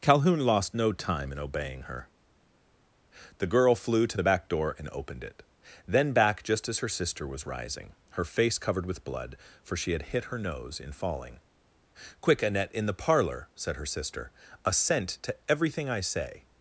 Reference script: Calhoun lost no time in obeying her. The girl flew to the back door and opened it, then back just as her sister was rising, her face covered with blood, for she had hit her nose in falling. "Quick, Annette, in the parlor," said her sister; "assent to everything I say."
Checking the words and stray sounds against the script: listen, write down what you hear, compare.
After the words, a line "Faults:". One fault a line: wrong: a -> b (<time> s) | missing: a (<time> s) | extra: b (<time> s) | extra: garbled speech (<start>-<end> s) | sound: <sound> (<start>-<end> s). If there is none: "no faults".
Calhoun lost no time in obeying her. The girl flew to the back door and opened it, then back just as her sister was rising, her face covered with blood, for she had hit her nose in falling. "Quick, Annette, in the parlor," said her sister; "assent to everything I say."
Faults:
no faults